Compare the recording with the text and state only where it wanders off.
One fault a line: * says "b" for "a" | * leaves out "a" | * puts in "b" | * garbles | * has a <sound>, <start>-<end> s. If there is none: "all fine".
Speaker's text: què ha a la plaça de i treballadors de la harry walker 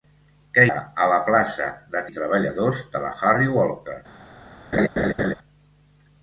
* has a laugh, 4.7-5.3 s